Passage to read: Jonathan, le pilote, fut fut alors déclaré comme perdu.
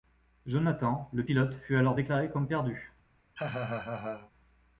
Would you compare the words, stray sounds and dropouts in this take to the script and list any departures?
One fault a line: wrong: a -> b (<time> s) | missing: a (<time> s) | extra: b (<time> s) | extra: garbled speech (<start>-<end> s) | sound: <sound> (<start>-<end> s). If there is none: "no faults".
missing: fut (1.7 s)
sound: laugh (3.3-4.3 s)